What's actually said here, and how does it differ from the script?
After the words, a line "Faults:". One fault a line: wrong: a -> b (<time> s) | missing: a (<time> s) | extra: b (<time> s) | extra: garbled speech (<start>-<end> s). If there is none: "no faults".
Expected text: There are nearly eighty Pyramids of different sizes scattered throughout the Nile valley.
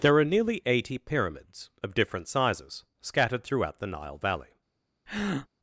There are nearly eighty Pyramids of different sizes scattered throughout the Nile valley.
Faults:
no faults